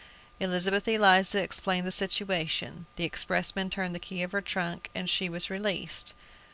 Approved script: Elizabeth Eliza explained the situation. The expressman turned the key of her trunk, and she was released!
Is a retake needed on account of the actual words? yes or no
no